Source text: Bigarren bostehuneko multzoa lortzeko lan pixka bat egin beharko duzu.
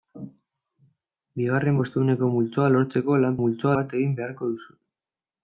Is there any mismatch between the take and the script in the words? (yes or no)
yes